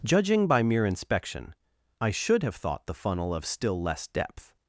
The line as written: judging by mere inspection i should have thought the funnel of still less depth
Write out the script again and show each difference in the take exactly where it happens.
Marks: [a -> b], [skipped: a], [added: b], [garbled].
judging by mere inspection i should have thought the funnel of still less depth